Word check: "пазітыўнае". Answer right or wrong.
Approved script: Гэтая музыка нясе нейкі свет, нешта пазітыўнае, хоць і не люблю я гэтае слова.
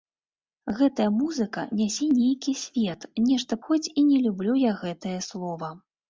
wrong